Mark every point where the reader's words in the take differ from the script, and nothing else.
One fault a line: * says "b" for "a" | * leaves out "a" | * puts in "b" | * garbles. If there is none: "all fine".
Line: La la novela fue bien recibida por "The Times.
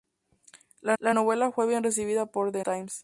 all fine